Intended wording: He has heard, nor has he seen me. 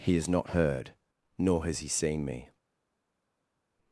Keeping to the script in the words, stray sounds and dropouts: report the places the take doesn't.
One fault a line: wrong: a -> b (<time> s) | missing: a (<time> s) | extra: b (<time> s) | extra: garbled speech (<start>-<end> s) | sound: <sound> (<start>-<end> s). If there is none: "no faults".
extra: not (0.3 s)